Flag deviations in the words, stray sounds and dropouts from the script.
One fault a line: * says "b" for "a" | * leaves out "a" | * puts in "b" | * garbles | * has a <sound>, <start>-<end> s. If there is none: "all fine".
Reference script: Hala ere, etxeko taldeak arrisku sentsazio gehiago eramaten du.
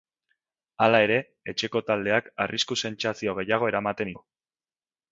all fine